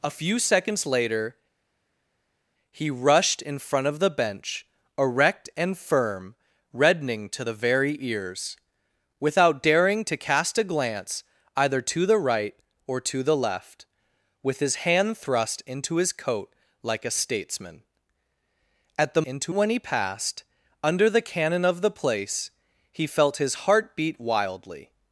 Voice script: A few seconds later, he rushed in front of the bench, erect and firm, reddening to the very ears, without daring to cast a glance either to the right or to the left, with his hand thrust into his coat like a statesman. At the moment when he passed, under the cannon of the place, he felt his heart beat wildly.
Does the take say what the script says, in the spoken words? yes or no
no